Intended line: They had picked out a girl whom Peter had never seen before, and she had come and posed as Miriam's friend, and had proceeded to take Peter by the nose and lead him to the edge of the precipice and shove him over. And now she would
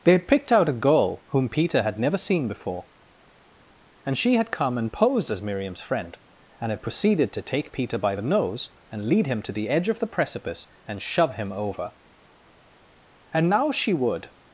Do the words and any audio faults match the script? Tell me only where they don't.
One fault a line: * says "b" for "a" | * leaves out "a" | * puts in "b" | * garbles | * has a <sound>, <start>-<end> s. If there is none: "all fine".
all fine